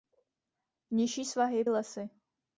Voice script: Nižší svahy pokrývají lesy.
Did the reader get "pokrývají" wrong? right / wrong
wrong